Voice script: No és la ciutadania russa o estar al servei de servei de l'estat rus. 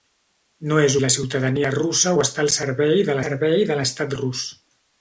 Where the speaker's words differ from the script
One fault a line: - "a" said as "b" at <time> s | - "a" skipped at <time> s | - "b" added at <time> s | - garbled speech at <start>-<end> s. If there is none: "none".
none